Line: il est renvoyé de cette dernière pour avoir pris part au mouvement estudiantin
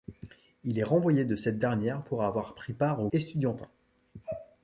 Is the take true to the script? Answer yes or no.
no